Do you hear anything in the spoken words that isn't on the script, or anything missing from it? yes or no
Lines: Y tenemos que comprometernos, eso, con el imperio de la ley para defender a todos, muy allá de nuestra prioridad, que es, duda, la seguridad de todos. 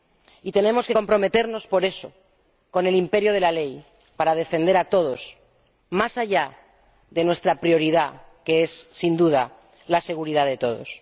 yes